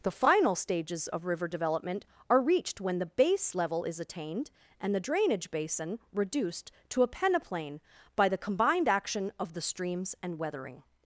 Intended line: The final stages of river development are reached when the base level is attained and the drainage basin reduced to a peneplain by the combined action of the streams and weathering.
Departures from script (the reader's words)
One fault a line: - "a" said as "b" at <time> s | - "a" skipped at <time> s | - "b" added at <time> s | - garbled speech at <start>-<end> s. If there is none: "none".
none